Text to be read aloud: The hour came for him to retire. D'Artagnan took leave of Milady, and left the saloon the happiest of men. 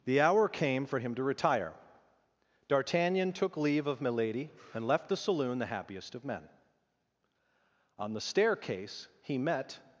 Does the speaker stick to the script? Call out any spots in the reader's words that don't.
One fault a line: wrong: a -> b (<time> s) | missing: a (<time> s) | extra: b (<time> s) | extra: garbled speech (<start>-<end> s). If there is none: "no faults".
extra: On the staircase he met (8.0 s)